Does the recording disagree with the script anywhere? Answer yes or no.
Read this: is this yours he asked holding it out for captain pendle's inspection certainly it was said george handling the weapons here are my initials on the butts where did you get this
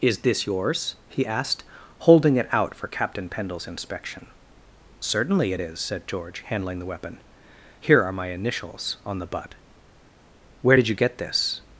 yes